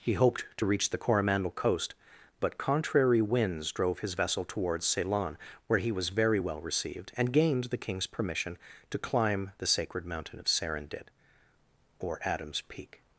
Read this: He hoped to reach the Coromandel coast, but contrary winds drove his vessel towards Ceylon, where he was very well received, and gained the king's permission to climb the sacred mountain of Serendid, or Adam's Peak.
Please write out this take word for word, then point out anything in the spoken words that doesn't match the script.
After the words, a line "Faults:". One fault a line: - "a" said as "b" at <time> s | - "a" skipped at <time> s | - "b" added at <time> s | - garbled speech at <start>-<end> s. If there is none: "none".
He hoped to reach the Coromandel coast, but contrary winds drove his vessel towards Ceylon, where he was very well received, and gained the king's permission to climb the sacred mountain of Serendid, or Adam's Peak.
Faults:
none